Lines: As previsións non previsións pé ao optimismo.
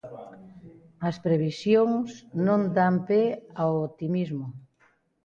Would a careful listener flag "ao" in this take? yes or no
no